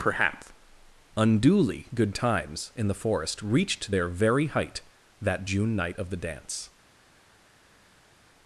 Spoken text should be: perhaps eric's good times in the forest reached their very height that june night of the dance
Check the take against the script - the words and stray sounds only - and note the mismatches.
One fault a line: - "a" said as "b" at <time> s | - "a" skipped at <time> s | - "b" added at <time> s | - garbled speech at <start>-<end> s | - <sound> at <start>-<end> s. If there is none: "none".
- "eric's" said as "unduly" at 1.1 s